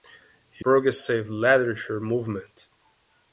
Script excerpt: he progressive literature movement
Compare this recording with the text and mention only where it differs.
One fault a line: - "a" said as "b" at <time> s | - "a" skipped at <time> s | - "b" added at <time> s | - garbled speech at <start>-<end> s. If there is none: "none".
none